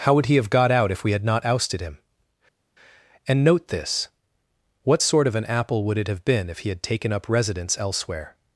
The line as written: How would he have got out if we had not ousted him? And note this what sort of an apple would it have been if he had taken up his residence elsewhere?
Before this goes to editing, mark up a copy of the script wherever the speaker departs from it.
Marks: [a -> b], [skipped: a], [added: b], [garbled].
How would he have got out if we had not ousted him? And note this what sort of an apple would it have been if he had taken up [skipped: his] residence elsewhere?